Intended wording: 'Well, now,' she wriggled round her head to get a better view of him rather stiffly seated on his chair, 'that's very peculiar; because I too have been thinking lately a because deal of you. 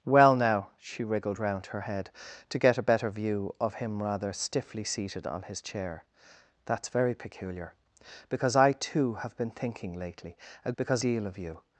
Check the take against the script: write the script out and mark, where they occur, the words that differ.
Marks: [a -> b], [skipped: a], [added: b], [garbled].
'Well, now,' she wriggled round her head to get a better view of him rather stiffly seated on his chair, 'that's very peculiar; because I too have been thinking lately a because deal of you.